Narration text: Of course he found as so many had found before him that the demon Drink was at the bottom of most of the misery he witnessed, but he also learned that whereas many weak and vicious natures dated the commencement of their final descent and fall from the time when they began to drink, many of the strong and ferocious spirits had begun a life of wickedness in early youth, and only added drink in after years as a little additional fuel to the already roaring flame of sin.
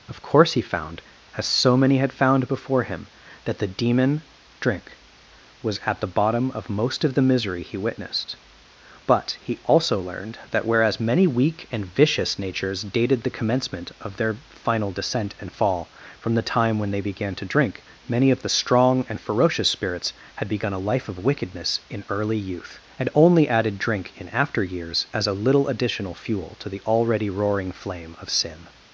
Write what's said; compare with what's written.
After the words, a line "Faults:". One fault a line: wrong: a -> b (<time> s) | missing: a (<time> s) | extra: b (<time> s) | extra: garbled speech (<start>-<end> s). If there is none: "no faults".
Of course he found as so many had found before him that the demon Drink was at the bottom of most of the misery he witnessed, but he also learned that whereas many weak and vicious natures dated the commencement of their final descent and fall from the time when they began to drink, many of the strong and ferocious spirits had begun a life of wickedness in early youth, and only added drink in after years as a little additional fuel to the already roaring flame of sin.
Faults:
no faults